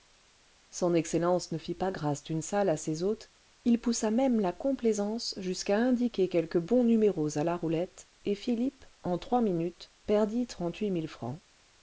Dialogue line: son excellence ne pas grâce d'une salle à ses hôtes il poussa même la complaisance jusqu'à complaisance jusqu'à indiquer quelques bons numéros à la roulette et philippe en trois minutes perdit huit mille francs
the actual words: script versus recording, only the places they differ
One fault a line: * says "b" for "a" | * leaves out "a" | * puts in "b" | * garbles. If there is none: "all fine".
* puts in "fit"
* leaves out "complaisance jusqu'à"
* puts in "trente"